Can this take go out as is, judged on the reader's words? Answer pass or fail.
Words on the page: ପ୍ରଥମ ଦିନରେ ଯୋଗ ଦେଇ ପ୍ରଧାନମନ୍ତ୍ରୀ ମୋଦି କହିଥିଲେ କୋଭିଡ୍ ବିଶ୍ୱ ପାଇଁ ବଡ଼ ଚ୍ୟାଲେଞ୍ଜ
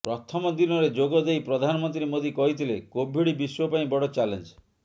pass